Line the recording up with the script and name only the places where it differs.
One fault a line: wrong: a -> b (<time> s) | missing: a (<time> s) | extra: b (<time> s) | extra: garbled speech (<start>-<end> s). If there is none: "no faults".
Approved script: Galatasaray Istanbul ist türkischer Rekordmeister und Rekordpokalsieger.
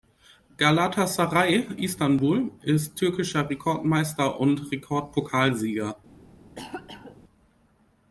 no faults